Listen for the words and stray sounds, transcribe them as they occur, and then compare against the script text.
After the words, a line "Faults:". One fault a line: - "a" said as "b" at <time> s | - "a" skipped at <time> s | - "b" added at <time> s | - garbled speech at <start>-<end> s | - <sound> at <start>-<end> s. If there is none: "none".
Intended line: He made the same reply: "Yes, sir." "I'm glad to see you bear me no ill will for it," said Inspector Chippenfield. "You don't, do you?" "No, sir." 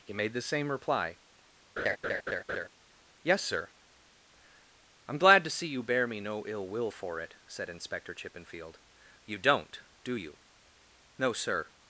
He made the same reply: "Yes, sir." "I'm glad to see you bear me no ill will for it," said Inspector Chippenfield. "You don't, do you?" "No, sir."
Faults:
- laugh at 1.8-2.7 s